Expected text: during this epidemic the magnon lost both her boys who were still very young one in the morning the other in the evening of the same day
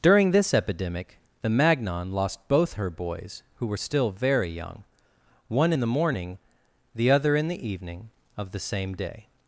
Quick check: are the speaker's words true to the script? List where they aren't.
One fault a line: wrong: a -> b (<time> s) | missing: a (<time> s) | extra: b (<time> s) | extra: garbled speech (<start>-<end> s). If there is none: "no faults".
no faults